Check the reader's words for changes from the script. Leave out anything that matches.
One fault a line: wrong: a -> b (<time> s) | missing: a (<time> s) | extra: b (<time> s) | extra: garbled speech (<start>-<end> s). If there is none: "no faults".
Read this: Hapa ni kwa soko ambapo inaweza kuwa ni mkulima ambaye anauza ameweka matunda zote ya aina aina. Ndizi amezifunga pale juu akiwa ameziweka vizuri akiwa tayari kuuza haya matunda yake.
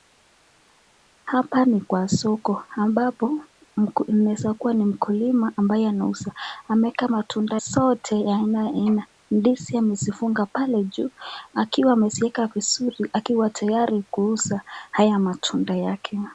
no faults